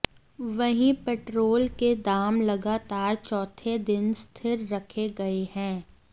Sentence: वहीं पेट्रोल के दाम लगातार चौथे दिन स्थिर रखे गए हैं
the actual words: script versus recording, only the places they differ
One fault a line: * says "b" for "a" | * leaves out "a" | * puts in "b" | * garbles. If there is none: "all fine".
all fine